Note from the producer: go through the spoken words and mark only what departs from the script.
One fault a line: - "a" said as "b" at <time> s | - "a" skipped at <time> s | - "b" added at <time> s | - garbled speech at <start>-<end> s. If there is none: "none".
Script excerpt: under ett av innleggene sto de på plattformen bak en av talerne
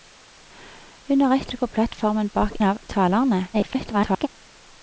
- "av innleggene sto" skipped at 1.5 s
- "en" skipped at 2.6 s
- garbled speech at 3.5-4.3 s